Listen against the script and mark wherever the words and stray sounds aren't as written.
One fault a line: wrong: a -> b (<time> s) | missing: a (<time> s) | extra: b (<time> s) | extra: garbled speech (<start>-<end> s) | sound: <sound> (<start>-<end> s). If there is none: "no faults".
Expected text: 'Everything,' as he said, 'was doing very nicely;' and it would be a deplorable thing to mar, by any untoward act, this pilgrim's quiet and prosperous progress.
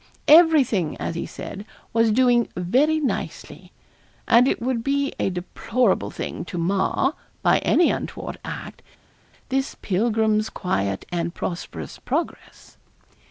no faults